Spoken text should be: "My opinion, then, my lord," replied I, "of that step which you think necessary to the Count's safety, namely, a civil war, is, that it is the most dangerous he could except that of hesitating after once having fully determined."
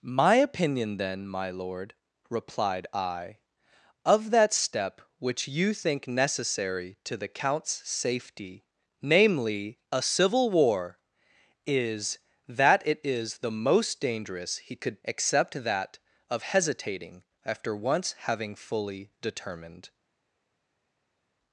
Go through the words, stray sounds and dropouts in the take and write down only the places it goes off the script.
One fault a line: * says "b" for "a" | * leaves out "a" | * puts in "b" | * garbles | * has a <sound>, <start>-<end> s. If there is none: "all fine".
all fine